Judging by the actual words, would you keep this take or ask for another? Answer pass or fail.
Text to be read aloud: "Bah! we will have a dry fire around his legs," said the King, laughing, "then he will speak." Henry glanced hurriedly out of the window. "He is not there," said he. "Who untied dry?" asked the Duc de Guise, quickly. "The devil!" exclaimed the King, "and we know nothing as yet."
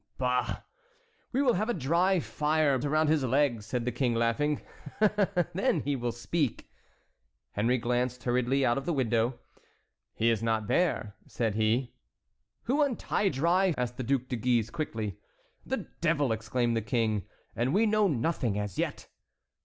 pass